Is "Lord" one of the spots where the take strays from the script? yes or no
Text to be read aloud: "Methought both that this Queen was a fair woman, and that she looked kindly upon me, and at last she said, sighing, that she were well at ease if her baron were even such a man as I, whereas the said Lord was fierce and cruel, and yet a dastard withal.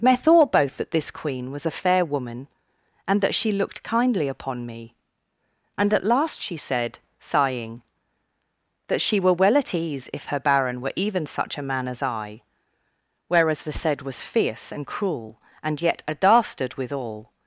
yes